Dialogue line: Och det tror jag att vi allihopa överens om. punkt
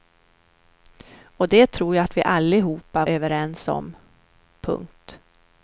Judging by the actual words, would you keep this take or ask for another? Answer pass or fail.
pass